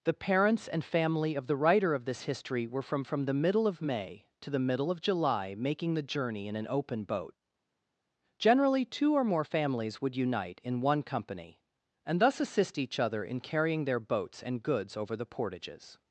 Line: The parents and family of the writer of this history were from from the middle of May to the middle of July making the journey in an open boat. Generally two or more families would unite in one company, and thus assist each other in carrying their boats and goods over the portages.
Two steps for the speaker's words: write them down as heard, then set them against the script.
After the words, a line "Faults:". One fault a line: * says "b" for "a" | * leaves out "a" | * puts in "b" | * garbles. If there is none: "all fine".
The parents and family of the writer of this history were from from the middle of May to the middle of July making the journey in an open boat. Generally two or more families would unite in one company, and thus assist each other in carrying their boats and goods over the portages.
Faults:
all fine